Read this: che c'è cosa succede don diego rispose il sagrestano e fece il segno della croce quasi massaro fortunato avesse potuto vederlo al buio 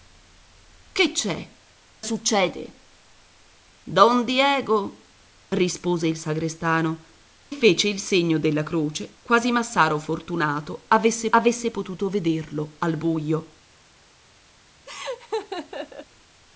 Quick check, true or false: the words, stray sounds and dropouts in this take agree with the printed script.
false